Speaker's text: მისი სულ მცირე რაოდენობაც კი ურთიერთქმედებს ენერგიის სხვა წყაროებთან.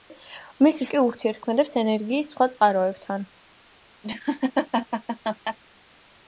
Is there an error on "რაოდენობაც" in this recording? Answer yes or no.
yes